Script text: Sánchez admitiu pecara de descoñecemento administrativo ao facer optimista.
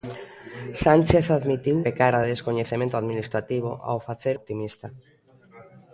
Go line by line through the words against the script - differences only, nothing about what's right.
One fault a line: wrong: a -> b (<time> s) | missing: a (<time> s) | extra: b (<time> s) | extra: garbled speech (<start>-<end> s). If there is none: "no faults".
no faults